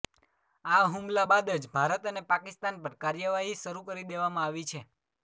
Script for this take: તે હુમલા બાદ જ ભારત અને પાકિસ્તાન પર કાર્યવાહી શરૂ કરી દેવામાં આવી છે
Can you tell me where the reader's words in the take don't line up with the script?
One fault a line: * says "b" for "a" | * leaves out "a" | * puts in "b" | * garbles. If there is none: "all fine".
* says "આ" for "તે"